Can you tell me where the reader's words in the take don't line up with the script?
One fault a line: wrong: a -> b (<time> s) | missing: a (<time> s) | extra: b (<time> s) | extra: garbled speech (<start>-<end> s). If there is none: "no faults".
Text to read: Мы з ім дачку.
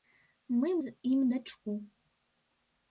no faults